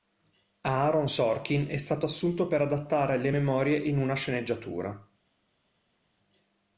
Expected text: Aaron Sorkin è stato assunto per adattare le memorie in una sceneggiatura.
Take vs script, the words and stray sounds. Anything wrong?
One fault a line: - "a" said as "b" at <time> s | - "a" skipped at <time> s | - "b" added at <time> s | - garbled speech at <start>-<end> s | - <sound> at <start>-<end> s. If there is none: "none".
none